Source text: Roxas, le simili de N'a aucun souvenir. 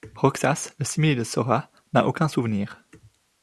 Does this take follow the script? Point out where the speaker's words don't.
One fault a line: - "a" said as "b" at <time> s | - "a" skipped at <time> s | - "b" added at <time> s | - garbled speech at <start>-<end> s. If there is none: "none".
- "Sora" added at 1.2 s